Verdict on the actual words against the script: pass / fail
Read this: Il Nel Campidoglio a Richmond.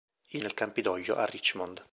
pass